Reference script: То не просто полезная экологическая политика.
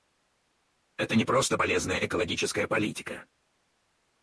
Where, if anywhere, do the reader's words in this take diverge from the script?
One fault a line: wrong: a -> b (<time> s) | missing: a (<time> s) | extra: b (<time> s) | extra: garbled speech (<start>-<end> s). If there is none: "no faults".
wrong: То -> Это (1.0 s)